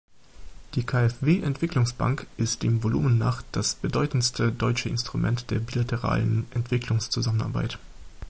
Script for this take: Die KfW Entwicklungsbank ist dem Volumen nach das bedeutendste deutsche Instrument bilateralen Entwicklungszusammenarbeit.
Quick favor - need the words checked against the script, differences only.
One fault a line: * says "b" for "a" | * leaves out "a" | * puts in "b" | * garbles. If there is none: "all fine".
* puts in "der"